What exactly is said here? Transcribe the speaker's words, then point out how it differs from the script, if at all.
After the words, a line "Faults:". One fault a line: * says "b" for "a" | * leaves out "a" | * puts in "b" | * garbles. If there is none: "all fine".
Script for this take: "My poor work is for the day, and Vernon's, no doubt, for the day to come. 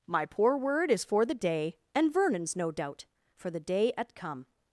"My poor word is for the day, and Vernon's, no doubt, for the day at come.
Faults:
* says "word" for "work"
* says "at" for "to"